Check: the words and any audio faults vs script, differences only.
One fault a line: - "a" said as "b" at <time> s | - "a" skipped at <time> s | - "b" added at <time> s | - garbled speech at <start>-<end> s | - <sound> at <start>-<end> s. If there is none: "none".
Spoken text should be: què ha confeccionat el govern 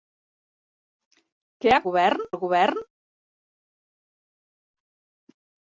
- "confeccionat" said as "govern" at 1.9 s